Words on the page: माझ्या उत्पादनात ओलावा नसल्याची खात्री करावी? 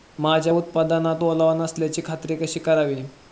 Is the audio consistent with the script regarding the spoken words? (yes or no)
no